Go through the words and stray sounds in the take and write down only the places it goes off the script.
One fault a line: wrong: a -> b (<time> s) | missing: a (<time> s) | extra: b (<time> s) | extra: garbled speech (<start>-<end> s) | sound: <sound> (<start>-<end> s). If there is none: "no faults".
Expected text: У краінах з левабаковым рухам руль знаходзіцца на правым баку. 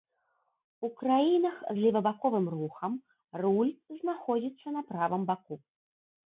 no faults